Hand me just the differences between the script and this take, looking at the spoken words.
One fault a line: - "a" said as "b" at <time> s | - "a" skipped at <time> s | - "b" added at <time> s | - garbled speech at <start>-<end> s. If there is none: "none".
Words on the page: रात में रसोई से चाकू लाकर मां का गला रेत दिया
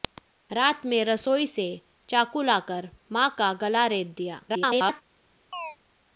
- garbled speech at 4.5-5.0 s